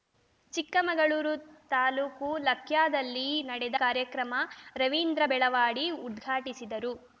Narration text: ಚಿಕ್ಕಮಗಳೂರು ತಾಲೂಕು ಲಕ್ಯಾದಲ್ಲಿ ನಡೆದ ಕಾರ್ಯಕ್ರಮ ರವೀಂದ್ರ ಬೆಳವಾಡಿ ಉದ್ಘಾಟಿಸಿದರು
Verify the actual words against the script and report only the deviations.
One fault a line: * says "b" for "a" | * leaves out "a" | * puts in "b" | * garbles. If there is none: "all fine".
all fine